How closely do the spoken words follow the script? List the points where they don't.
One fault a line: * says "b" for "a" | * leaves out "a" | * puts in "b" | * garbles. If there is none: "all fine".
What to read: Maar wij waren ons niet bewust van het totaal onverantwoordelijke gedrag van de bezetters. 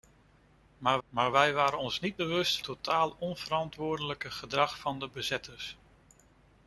* puts in "maar"
* leaves out "van het"